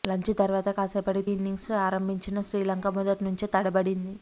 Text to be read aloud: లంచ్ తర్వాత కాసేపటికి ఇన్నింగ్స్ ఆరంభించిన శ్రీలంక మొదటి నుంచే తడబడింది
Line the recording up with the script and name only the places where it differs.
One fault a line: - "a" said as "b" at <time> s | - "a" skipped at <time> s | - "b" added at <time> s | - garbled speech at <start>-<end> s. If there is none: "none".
none